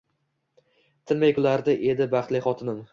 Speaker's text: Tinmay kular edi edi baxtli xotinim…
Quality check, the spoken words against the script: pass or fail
fail